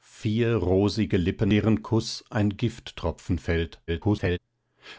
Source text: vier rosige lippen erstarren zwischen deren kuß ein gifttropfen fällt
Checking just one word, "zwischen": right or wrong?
wrong